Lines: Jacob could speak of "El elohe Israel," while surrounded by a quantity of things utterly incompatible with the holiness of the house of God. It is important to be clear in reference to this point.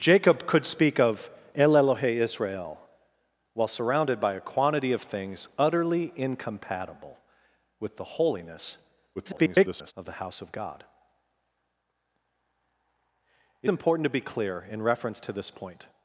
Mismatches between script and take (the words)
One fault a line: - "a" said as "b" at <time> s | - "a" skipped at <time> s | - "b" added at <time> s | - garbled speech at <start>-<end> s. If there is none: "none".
- garbled speech at 9.1-9.9 s
- "is" skipped at 13.7 s